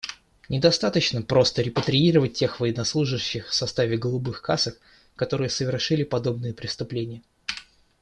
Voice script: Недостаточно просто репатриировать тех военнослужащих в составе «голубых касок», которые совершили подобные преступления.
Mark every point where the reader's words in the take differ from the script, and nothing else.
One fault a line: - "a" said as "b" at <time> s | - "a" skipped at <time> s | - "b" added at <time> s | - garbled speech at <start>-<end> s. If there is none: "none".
none